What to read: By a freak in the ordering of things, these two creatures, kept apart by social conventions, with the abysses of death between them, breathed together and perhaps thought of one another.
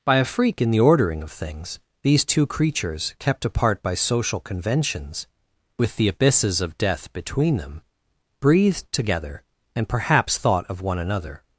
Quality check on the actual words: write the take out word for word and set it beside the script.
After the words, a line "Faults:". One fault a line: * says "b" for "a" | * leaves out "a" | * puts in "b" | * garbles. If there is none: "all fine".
By a freak in the ordering of things, these two creatures, kept apart by social conventions, with the abysses of death between them, breathed together and perhaps thought of one another.
Faults:
all fine